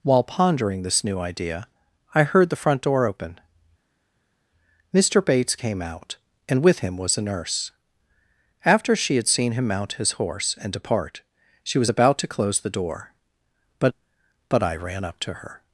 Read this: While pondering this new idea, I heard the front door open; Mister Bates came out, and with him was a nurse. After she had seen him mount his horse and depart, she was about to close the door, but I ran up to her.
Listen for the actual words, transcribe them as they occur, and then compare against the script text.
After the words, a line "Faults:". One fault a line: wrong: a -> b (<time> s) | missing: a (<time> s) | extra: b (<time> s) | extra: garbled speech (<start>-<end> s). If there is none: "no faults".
While pondering this new idea, I heard the front door open; Mister Bates came out, and with him was a nurse. After she had seen him mount his horse and depart, she was about to close the door, but but I ran up to her.
Faults:
extra: but (14.5 s)